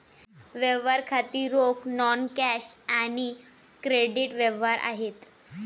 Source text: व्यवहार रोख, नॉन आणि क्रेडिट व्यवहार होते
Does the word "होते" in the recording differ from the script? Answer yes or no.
yes